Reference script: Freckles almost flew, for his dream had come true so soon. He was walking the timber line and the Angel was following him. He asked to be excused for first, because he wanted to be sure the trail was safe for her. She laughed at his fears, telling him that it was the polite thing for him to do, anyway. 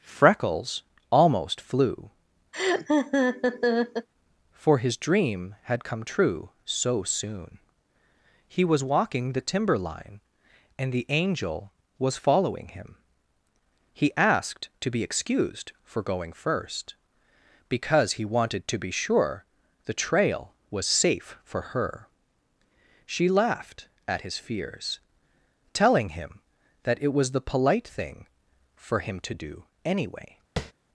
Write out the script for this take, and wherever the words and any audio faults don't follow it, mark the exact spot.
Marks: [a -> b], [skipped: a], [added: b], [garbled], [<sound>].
Freckles almost flew, [laugh] for his dream had come true so soon. He was walking the timber line and the Angel was following him. He asked to be excused for [added: going] first, because he wanted to be sure the trail was safe for her. She laughed at his fears, telling him that it was the polite thing for him to do, anyway. [tap]